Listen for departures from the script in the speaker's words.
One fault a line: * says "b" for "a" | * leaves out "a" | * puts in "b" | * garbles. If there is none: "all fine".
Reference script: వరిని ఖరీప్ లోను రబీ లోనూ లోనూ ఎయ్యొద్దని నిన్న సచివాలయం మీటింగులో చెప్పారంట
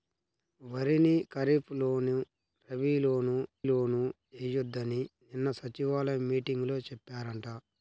all fine